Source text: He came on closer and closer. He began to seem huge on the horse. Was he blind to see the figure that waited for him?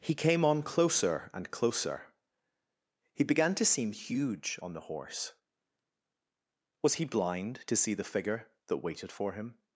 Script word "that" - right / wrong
right